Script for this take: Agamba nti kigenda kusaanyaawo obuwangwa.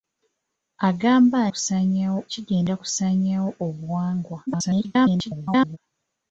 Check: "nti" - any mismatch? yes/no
yes